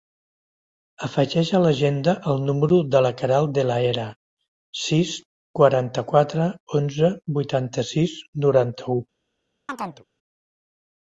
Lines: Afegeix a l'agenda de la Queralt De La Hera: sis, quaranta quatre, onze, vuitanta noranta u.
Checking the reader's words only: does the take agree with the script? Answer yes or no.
no